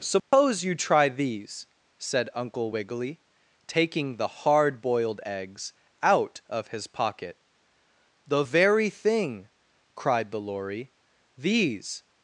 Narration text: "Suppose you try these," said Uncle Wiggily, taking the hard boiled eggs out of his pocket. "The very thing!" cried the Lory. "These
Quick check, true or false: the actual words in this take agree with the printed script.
true